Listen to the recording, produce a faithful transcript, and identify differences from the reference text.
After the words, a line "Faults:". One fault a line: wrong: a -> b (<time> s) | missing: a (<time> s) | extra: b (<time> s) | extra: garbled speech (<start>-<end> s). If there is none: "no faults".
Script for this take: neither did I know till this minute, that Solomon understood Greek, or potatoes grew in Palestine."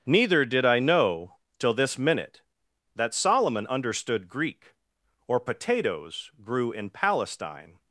neither did I know till this minute, that Solomon understood Greek, or potatoes grew in Palestine."
Faults:
no faults